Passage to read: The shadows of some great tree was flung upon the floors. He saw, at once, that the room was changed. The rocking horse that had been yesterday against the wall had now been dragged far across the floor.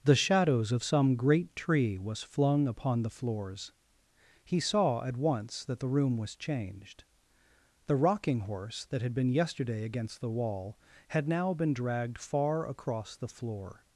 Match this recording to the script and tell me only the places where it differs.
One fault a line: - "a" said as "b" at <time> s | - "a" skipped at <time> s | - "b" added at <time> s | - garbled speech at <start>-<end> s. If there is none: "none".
none